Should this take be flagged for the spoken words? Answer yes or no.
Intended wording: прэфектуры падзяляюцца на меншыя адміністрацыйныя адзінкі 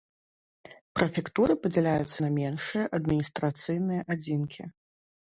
no